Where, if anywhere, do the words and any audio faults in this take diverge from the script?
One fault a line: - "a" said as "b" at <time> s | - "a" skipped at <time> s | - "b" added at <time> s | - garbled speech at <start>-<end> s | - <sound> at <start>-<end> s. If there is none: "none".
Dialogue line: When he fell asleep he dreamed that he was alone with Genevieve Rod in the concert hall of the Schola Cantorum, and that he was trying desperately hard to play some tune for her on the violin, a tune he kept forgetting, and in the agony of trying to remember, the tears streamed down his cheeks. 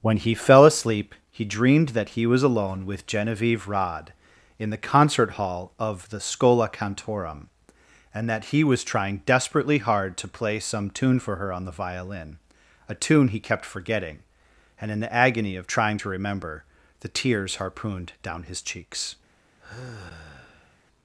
- "streamed" said as "harpooned" at 17.6 s
- sigh at 19.6-20.8 s